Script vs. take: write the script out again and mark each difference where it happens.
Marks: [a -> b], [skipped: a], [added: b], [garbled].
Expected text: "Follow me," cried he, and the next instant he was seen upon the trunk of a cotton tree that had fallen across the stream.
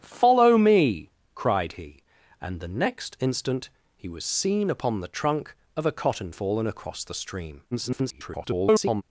"Follow me," cried he, and the next instant he was seen upon the trunk of a cotton [skipped: tree that had] fallen across the stream. [garbled]